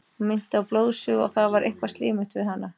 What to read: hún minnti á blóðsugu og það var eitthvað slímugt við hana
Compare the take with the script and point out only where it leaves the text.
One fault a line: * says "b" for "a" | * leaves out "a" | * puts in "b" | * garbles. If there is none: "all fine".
all fine